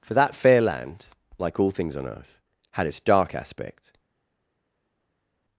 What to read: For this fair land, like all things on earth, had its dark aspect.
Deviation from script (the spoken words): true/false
true